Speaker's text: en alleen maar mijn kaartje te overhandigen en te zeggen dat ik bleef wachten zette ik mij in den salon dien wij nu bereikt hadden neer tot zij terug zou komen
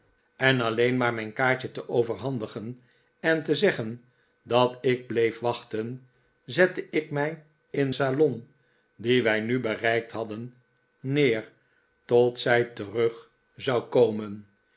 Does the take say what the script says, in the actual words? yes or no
no